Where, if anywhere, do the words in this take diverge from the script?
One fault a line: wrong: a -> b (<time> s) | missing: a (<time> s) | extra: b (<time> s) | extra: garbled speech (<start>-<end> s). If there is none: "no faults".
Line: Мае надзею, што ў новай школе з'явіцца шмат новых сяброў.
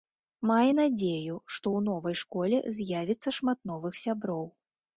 no faults